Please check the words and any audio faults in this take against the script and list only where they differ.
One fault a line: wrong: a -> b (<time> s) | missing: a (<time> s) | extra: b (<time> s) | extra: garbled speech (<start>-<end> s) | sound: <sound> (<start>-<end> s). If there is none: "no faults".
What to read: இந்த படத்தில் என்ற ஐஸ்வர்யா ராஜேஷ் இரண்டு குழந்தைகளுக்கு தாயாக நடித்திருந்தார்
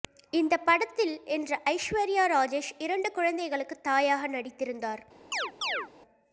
sound: chirp (5.3-5.9 s)